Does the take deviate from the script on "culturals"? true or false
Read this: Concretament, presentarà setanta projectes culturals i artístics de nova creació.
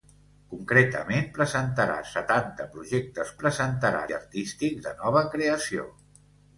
true